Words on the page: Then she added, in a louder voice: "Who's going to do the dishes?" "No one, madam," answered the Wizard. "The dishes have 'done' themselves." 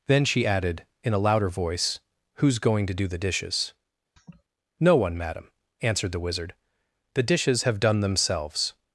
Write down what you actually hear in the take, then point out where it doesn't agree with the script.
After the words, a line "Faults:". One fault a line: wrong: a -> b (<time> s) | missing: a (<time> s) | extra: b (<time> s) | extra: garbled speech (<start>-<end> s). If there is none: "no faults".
Then she added, in a louder voice: "Who's going to do the dishes?" "No one, madam," answered the Wizard. "The dishes have 'done' themselves."
Faults:
no faults